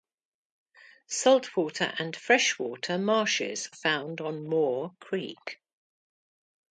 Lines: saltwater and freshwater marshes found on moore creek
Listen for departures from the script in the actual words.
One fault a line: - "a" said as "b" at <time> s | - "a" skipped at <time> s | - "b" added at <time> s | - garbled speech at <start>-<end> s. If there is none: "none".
none